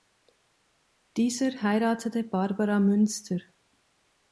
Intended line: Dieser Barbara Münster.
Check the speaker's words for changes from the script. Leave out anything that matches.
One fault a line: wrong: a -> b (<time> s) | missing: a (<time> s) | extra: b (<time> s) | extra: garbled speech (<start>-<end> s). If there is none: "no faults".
extra: heiratete (1.6 s)